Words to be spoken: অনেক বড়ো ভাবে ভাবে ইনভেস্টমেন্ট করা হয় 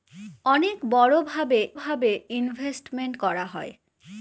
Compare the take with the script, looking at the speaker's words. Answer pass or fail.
pass